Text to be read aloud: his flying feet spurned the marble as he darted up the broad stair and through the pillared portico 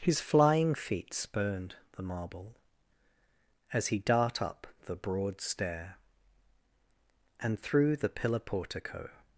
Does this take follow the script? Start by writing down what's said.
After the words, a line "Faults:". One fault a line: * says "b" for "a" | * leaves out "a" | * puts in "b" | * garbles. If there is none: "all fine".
his flying feet spurned the marble as he dart up the broad stair and through the pillar portico
Faults:
* says "dart" for "darted"
* says "pillar" for "pillared"